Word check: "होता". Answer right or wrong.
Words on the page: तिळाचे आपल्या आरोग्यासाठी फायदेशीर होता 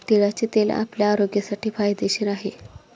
wrong